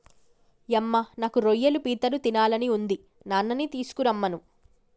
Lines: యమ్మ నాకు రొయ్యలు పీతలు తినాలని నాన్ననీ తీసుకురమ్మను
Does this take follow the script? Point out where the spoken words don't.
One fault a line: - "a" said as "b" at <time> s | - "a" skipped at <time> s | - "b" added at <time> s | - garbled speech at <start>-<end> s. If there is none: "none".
- "ఉంది" added at 2.7 s